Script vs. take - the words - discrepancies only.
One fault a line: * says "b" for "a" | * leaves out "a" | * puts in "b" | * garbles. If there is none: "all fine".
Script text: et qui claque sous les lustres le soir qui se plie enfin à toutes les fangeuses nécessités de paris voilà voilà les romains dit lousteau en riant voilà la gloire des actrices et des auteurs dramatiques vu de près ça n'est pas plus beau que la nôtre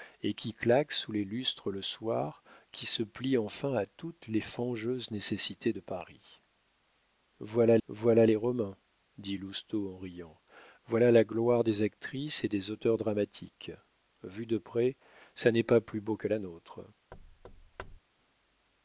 all fine